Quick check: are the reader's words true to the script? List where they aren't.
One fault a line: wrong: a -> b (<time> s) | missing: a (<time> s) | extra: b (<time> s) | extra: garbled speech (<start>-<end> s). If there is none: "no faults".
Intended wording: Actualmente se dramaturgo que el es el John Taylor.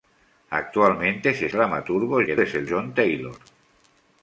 no faults